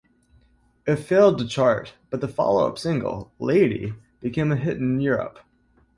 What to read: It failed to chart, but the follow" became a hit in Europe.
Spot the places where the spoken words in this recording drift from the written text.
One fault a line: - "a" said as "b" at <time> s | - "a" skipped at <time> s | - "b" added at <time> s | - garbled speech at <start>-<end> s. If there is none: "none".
- "up single Lady" added at 2.7 s